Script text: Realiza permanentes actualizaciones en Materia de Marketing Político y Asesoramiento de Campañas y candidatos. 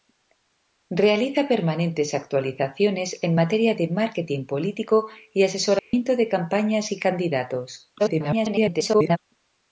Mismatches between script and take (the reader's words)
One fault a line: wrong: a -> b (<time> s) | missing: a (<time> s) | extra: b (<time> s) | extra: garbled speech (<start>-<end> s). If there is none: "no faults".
extra: garbled speech (8.0-9.2 s)